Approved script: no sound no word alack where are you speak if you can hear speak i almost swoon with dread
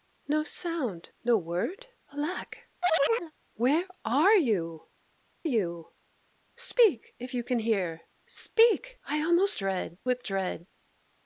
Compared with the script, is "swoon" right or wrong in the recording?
wrong